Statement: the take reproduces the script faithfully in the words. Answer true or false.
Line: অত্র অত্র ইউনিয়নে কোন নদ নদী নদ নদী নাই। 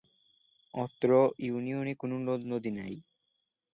false